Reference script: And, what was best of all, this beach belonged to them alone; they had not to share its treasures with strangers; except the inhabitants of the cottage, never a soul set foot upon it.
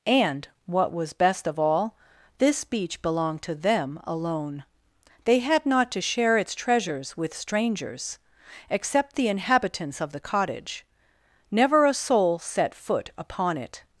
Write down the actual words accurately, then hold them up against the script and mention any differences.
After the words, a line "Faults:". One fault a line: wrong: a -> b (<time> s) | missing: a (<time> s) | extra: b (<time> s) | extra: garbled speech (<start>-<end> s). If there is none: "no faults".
And, what was best of all, this beach belonged to them alone; they had not to share its treasures with strangers; except the inhabitants of the cottage, never a soul set foot upon it.
Faults:
no faults